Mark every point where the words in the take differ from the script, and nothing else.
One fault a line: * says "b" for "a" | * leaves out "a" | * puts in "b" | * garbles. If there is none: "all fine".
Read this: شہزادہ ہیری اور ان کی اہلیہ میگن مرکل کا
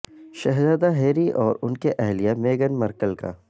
all fine